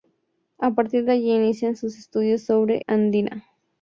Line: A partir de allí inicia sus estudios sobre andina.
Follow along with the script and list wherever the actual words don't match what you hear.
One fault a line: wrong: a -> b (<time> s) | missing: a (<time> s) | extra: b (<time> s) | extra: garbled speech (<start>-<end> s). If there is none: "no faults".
no faults